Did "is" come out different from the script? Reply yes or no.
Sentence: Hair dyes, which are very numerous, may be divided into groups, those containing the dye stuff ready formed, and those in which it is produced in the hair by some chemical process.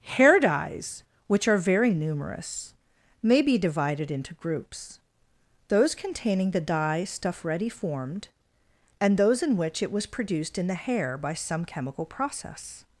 yes